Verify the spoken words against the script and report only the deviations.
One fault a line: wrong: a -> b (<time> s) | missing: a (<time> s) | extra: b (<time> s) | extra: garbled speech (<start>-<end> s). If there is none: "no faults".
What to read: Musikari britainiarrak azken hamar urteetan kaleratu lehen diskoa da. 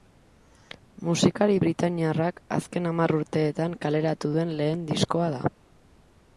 extra: duen (4.4 s)